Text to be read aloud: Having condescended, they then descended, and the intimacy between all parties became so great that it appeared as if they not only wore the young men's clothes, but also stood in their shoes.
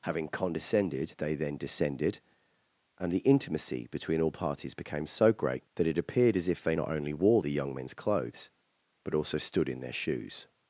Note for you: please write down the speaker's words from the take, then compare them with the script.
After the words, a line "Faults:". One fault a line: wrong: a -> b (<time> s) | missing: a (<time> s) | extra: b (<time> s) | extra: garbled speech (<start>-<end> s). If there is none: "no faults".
Having condescended, they then descended, and the intimacy between all parties became so great that it appeared as if they not only wore the young men's clothes, but also stood in their shoes.
Faults:
no faults